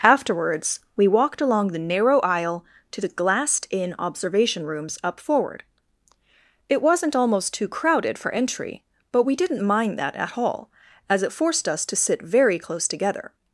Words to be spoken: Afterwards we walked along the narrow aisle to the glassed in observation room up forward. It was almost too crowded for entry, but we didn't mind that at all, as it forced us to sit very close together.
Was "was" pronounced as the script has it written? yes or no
no